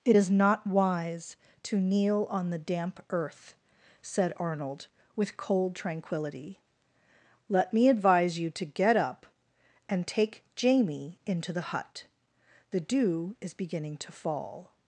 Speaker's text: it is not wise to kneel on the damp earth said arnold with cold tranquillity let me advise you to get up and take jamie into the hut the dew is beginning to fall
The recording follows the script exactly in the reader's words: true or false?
true